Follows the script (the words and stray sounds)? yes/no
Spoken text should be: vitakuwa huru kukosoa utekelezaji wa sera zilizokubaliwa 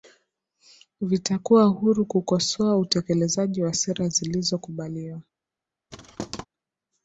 no